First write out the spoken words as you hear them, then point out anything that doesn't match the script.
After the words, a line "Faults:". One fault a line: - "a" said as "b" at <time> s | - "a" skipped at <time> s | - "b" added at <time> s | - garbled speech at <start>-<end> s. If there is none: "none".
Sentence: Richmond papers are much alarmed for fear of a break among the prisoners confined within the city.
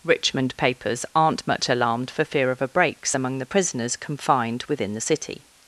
Richmond papers aren't much alarmed for fear of a breaks among the prisoners confined within the city.
Faults:
- "are" said as "aren't" at 1.1 s
- "break" said as "breaks" at 2.7 s